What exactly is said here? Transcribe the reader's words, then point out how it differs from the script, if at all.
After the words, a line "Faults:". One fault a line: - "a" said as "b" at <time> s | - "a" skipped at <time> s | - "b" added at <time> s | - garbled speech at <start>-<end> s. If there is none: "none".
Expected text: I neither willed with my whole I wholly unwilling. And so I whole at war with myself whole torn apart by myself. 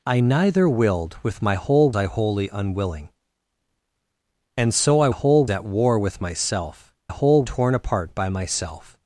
I neither willed with my whole I wholly unwilling. And so I whole at war with myself whole torn apart by myself.
Faults:
none